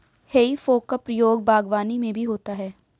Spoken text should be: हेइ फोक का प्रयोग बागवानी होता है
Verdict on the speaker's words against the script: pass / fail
fail